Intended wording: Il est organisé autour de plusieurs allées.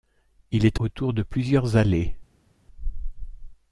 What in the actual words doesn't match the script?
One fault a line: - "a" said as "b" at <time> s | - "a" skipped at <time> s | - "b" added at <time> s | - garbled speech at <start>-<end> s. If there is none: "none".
- "organisé" skipped at 0.8 s